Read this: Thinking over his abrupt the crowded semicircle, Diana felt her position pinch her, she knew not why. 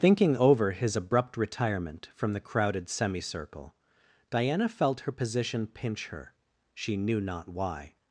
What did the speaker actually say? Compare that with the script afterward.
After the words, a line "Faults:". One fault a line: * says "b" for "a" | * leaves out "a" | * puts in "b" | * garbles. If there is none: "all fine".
Thinking over his abrupt retirement from the crowded semicircle, Diana felt her position pinch her, she knew not why.
Faults:
* puts in "retirement from"